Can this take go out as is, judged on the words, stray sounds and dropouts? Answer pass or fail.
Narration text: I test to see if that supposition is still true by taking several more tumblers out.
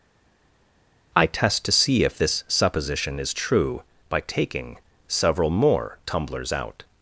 fail